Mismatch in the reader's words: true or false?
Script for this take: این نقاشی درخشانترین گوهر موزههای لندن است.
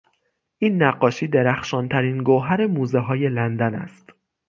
false